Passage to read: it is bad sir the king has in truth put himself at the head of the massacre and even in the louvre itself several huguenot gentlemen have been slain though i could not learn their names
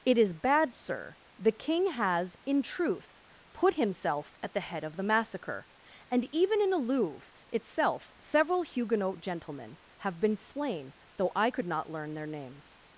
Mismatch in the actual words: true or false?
false